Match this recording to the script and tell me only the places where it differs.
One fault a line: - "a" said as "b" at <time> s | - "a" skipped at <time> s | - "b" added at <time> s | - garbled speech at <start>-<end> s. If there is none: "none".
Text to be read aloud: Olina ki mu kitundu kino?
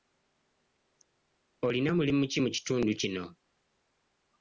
- "mulimu" added at 2.0 s